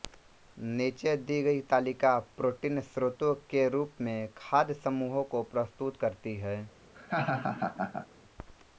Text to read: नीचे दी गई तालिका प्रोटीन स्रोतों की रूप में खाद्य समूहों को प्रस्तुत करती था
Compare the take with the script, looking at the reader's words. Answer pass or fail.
fail